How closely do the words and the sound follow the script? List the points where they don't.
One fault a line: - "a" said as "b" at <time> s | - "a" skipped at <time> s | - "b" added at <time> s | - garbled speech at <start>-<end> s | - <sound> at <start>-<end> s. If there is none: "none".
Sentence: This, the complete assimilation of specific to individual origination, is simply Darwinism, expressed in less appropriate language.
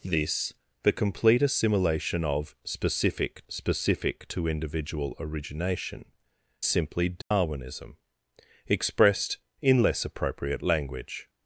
- "specific" added at 3.5 s
- "is" skipped at 6.0 s
- dropout at 7.2-7.3 s